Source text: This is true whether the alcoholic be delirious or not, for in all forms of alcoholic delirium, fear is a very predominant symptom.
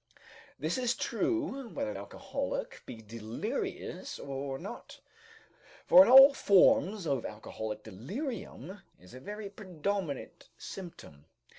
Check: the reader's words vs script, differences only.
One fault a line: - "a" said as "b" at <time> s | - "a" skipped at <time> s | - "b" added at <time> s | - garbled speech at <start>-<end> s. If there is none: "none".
- "the" skipped at 1.9 s
- "fear" skipped at 8.8 s